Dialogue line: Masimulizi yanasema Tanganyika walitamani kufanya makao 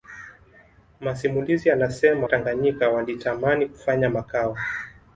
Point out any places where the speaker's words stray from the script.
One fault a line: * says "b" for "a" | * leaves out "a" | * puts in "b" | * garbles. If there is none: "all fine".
all fine